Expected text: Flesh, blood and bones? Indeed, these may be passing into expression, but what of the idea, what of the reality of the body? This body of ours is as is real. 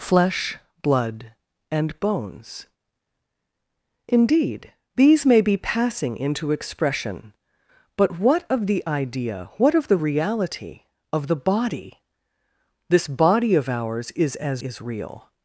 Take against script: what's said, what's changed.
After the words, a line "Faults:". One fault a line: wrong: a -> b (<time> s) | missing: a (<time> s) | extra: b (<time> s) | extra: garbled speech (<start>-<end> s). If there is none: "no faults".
Flesh, blood and bones? Indeed, these may be passing into expression, but what of the idea, what of the reality of the body? This body of ours is as is real.
Faults:
no faults